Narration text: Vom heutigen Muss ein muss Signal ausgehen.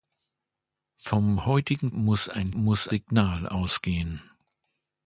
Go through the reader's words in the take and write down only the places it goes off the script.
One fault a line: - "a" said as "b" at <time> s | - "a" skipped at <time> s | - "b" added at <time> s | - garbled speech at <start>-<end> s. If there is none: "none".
none